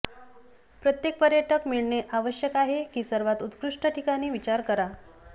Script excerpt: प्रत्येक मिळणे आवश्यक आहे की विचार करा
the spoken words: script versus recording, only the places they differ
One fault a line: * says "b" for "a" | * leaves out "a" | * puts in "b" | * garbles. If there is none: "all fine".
* puts in "पर्यटक"
* puts in "सर्वात उत्कृष्ट ठिकाणी"